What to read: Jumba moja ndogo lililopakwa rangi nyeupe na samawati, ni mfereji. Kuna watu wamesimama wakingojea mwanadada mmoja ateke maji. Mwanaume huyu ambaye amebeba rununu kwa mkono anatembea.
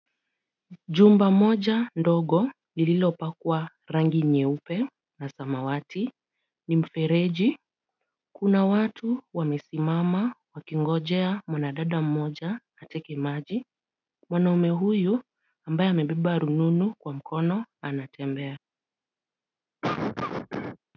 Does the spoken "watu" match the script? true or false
true